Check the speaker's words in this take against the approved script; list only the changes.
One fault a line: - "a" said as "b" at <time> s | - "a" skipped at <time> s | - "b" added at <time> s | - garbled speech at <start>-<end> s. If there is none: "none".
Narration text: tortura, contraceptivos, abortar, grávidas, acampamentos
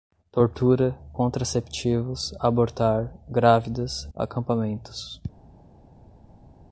none